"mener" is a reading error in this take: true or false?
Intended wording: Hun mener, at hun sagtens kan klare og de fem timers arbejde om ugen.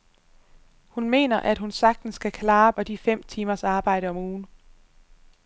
false